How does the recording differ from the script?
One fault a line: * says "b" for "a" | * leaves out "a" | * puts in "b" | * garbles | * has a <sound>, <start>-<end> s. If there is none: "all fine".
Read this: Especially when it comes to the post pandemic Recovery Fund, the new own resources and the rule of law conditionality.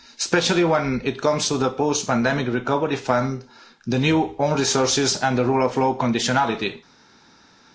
all fine